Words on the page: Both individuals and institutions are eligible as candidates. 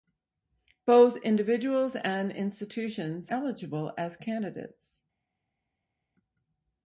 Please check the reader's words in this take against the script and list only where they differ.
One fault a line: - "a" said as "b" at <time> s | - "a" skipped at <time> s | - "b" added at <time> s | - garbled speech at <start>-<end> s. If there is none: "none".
- "are" skipped at 3.3 s